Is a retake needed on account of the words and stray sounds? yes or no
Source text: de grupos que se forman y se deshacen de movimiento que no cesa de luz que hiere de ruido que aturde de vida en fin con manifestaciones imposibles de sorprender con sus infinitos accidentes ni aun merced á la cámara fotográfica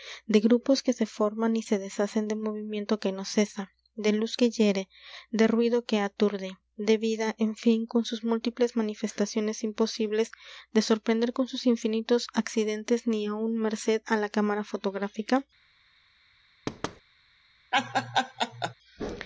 yes